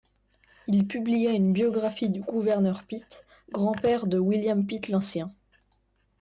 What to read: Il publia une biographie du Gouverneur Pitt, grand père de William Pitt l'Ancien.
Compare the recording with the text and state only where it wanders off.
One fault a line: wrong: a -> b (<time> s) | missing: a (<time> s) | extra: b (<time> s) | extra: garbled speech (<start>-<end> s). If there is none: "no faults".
no faults